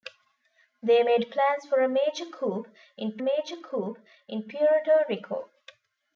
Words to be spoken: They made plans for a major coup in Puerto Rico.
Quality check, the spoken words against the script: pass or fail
fail